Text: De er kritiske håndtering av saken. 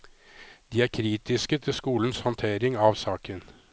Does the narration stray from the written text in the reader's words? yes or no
yes